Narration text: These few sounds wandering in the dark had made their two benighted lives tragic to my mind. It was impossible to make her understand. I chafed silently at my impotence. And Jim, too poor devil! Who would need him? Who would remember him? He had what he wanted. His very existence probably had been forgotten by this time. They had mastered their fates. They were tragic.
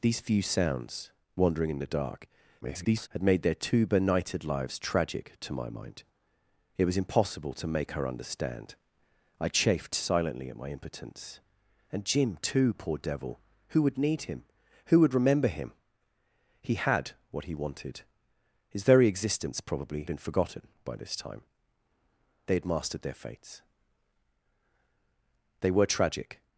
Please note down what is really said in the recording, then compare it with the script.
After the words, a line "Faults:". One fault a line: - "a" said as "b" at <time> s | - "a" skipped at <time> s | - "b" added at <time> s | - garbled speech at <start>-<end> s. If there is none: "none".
These few sounds wandering in the dark [garbled] had made their two benighted lives tragic to my mind. It was impossible to make her understand. I chafed silently at my impotence. And Jim, too poor devil! Who would need him? Who would remember him? He had what he wanted. His very existence probably been forgotten by this time. They had mastered their fates. They were tragic.
Faults:
- garbled speech at 2.6-3.1 s
- "had" skipped at 20.0 s